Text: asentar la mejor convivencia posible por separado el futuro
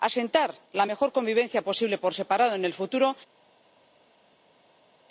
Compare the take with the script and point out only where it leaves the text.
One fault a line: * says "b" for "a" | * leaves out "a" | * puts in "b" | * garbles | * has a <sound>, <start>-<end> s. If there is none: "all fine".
* puts in "en"